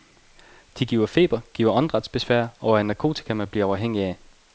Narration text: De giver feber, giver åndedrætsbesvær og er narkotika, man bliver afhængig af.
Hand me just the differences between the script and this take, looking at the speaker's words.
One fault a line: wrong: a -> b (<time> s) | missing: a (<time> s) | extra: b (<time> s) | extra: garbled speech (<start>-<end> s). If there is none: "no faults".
no faults